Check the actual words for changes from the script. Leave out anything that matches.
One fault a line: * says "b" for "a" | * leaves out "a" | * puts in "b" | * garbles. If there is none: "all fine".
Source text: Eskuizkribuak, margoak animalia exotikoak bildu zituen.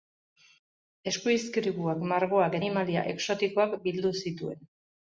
all fine